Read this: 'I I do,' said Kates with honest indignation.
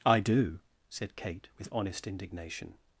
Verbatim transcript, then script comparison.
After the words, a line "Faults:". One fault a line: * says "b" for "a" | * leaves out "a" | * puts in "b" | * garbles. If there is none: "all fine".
'I do,' said Kate with honest indignation.
Faults:
* leaves out "I"
* says "Kate" for "Kates"